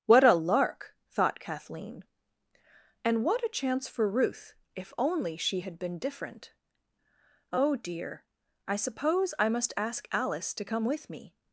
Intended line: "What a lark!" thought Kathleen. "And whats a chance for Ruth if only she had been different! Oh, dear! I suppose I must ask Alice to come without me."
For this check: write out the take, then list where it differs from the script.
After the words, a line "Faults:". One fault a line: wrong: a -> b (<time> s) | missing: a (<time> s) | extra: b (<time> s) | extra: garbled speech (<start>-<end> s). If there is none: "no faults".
"What a lark!" thought Kathleen. "And what a chance for Ruth if only she had been different! Oh, dear! I suppose I must ask Alice to come with me."
Faults:
wrong: whats -> what (3.2 s)
wrong: without -> with (10.8 s)